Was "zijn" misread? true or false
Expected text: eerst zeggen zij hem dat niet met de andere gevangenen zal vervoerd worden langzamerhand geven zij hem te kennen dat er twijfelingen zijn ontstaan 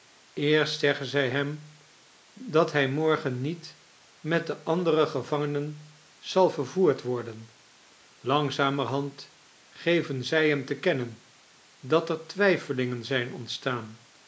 false